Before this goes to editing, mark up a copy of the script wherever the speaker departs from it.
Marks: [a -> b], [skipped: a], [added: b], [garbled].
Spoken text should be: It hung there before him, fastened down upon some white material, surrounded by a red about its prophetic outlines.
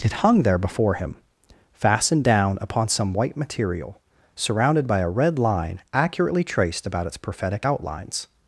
It hung there before him, fastened down upon some white material, surrounded by a red [added: line accurately traced] about its prophetic outlines.